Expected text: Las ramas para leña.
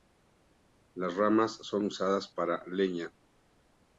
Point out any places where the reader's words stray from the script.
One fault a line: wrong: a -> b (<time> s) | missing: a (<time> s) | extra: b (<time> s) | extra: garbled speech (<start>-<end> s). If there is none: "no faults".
extra: son usadas (1.6 s)